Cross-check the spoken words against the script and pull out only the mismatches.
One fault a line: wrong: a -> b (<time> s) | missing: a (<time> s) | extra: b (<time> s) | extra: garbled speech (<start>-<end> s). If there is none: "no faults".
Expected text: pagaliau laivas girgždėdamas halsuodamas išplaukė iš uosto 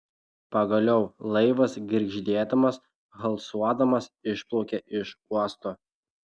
no faults